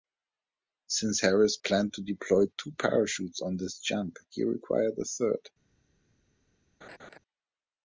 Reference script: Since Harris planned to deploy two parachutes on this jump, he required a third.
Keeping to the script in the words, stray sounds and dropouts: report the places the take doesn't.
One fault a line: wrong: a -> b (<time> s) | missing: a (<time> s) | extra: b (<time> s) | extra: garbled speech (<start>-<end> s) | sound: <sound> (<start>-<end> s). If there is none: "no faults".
sound: laugh (6.8-7.2 s)